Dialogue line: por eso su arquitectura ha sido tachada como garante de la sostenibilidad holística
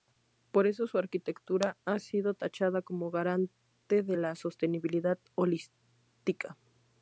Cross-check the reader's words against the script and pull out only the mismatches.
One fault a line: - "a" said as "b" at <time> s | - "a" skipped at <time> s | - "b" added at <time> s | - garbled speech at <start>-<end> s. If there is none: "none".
none